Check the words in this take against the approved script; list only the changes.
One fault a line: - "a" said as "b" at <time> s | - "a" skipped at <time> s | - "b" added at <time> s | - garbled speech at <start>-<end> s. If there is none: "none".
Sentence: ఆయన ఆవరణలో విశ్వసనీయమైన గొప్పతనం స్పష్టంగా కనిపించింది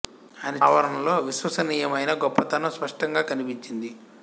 none